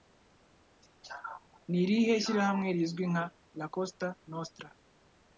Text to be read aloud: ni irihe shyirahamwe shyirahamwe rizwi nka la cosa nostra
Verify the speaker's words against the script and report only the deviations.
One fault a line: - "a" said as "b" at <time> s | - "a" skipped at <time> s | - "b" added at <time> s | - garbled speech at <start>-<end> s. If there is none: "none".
- "shyirahamwe" skipped at 2.7 s